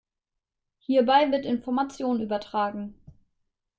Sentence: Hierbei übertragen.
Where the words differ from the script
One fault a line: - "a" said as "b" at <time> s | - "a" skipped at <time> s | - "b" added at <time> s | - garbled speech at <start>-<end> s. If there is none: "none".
- "wird Information" added at 1.3 s